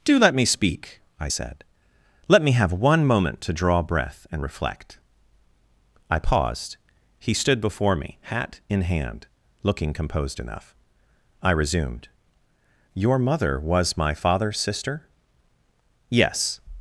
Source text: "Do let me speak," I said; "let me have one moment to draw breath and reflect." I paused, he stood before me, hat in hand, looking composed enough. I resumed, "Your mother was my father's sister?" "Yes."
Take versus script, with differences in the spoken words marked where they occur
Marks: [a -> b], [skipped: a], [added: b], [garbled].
"Do let me speak," I said; "let me have one moment to draw breath and reflect." I paused, he stood before me, hat in hand, looking composed enough. I resumed, "Your mother was my father's sister?" "Yes."